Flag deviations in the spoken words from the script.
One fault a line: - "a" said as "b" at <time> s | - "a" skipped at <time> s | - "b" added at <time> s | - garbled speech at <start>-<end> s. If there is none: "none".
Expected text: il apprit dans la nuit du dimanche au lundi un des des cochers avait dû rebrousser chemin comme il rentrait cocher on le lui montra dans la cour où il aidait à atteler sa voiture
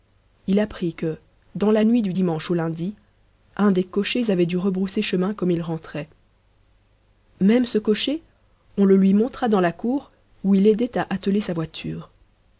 - "que" added at 0.9 s
- "des" skipped at 3.8 s
- "même ce" added at 7.4 s